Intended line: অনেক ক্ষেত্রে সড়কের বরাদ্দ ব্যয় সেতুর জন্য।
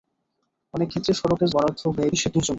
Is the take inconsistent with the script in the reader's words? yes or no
no